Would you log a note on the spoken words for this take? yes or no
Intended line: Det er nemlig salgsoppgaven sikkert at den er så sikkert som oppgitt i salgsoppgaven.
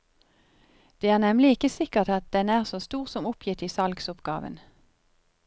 yes